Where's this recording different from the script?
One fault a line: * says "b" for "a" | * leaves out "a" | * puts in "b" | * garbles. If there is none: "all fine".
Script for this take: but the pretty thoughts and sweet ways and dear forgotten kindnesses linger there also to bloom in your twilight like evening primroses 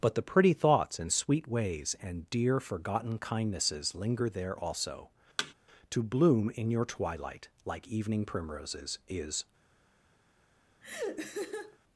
* puts in "is"